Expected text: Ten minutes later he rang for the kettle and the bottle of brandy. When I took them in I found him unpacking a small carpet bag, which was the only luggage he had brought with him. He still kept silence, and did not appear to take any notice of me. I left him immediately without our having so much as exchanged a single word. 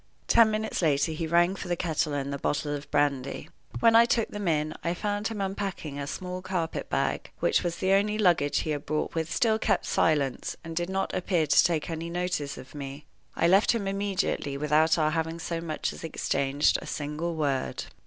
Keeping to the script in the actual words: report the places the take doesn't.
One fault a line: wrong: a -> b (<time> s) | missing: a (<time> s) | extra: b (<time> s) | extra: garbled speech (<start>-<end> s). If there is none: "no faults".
missing: him He (9.3 s)